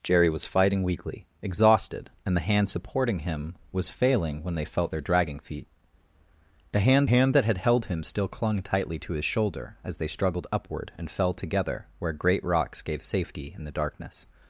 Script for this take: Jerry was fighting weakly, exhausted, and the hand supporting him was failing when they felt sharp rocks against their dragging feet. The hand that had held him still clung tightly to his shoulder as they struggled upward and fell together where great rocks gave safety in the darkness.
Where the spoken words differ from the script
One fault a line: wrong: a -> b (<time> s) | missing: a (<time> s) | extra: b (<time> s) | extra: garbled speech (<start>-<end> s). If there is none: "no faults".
missing: sharp rocks against (4.9 s)
extra: hand (7.0 s)